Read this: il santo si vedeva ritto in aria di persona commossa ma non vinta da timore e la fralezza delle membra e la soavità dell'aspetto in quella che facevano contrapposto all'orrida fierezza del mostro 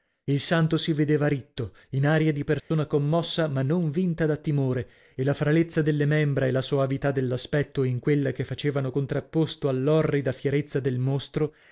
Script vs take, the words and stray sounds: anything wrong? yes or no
yes